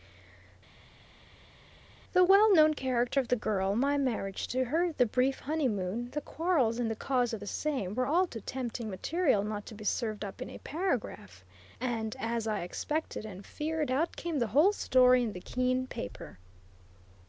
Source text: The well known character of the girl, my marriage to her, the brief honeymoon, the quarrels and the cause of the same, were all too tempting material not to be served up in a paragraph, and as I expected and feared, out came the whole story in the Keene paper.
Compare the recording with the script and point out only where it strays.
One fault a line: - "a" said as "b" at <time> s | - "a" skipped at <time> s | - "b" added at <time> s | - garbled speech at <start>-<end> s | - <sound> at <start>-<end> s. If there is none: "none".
none